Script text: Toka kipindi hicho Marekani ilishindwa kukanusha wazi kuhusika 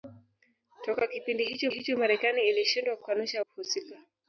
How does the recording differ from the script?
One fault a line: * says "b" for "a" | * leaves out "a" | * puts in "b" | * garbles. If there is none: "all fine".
* puts in "hicho"
* leaves out "wazi"